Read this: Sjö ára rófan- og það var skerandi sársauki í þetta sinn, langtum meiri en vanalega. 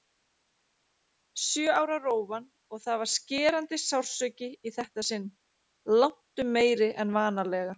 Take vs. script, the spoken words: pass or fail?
pass